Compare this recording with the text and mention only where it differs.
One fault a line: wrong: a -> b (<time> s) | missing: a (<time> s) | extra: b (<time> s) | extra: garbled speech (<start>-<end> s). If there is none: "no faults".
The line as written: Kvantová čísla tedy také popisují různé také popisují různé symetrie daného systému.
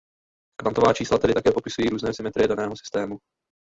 missing: také popisují různé (2.1 s)